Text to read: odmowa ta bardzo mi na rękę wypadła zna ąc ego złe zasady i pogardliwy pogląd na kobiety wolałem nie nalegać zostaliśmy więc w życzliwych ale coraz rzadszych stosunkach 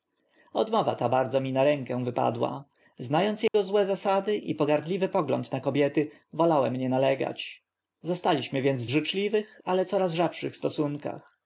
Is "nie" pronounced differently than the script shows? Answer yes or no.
no